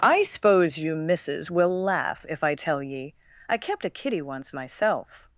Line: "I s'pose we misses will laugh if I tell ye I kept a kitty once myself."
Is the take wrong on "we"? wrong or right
wrong